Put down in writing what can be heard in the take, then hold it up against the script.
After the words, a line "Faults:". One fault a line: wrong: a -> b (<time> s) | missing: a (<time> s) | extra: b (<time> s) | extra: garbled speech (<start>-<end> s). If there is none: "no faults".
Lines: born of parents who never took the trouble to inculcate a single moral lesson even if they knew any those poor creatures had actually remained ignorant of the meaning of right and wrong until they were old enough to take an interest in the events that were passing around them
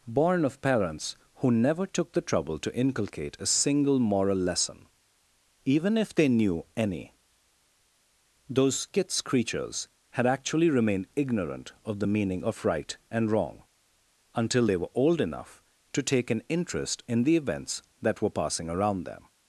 born of parents who never took the trouble to inculcate a single moral lesson even if they knew any those skits creatures had actually remained ignorant of the meaning of right and wrong until they were old enough to take an interest in the events that were passing around them
Faults:
wrong: poor -> skits (8.8 s)